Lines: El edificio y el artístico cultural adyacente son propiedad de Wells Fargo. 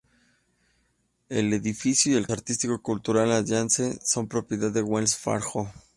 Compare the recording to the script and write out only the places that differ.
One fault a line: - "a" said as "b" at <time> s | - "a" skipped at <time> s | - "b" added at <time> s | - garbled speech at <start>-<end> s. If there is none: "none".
none